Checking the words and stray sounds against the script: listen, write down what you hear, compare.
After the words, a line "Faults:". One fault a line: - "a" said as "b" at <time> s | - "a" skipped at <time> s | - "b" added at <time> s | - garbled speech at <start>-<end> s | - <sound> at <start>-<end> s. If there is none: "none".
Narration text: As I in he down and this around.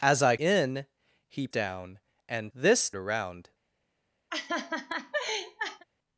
As I in he down and this around.
Faults:
- laugh at 4.3-5.8 s